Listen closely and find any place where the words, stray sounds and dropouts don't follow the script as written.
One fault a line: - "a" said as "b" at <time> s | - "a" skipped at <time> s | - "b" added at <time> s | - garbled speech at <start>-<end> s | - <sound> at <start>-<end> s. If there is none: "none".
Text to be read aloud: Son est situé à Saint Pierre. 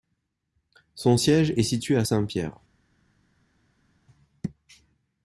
- "siège" added at 1.1 s